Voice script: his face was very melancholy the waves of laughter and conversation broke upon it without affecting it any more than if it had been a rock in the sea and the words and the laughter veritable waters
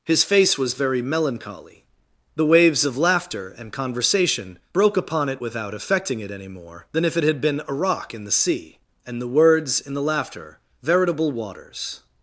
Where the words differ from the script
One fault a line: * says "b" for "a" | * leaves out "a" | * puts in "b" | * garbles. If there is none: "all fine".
* says "in" for "and"